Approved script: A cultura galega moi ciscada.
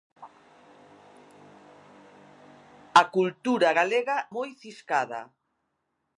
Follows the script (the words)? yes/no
yes